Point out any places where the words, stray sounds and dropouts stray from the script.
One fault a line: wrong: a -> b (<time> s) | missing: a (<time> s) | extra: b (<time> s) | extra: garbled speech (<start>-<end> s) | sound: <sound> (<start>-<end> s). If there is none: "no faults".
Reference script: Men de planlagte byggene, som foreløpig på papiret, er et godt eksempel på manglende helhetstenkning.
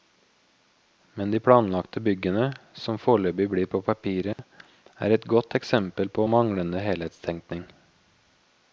extra: blir (3.5 s)
sound: dropout (4.3-4.4 s)